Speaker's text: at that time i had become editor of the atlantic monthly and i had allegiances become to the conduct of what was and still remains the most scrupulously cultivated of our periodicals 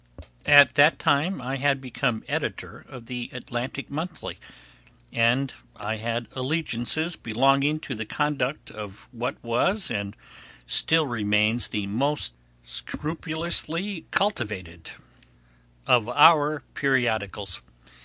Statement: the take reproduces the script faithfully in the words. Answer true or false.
false